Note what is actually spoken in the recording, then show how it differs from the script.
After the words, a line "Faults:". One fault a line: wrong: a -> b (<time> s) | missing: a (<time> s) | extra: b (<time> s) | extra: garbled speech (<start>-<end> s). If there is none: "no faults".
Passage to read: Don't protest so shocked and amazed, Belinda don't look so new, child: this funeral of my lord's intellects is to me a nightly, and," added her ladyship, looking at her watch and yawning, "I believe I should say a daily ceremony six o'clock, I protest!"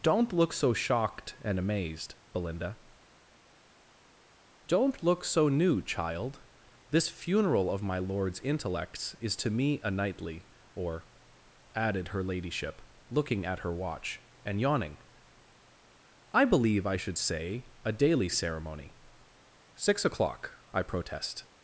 Don't look so shocked and amazed, Belinda don't look so new, child: this funeral of my lord's intellects is to me a nightly, or," added her ladyship, looking at her watch and yawning, "I believe I should say a daily ceremony six o'clock, I protest!"
Faults:
wrong: protest -> look (0.3 s)
wrong: and -> or (10.8 s)